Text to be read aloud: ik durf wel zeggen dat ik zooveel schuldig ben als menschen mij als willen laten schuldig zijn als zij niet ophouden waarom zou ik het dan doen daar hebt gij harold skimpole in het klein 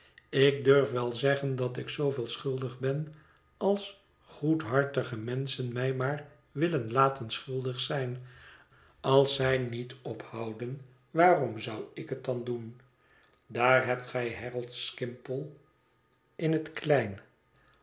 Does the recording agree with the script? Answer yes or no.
no